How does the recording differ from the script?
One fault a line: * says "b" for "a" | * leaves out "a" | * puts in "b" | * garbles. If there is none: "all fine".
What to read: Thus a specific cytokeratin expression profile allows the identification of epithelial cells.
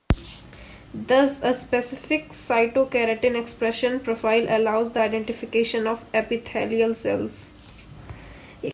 all fine